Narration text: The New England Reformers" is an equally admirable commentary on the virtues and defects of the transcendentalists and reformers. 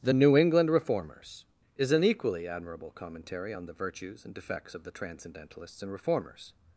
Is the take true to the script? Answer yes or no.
yes